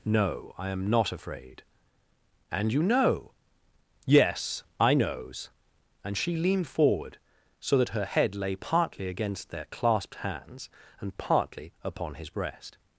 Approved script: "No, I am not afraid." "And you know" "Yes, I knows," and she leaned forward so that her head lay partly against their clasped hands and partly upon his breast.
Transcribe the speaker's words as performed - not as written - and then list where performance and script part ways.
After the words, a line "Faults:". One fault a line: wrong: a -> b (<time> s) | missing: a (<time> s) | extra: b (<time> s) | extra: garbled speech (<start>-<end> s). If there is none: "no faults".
"No, I am not afraid." "And you know" "Yes, I knows," and she leaned forward so that her head lay partly against their clasped hands and partly upon his breast.
Faults:
no faults